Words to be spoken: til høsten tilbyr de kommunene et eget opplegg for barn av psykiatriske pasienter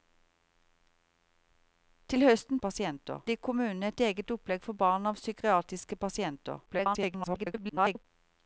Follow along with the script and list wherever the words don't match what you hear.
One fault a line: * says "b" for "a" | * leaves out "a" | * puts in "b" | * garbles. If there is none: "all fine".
* says "pasienter" for "tilbyr"
* garbles